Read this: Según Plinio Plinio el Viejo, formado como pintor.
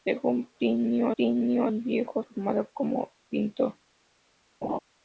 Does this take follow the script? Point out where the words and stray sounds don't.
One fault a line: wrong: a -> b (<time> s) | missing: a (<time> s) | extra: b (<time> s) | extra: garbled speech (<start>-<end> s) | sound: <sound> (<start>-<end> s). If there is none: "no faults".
sound: laugh (4.6-4.8 s)